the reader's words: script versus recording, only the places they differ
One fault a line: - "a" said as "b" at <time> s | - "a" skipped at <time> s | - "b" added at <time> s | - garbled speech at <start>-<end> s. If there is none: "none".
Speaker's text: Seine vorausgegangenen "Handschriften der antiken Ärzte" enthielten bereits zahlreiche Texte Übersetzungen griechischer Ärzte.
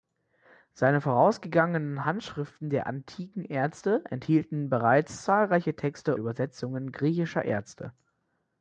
none